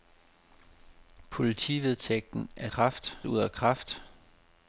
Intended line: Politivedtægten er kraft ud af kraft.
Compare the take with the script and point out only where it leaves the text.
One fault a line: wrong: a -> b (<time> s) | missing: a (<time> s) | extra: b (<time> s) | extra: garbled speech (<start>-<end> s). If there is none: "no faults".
no faults